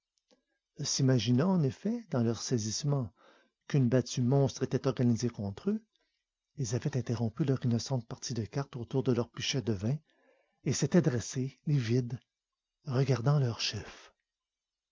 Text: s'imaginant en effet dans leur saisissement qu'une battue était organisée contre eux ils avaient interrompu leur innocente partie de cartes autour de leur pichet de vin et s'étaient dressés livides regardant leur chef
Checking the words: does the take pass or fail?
fail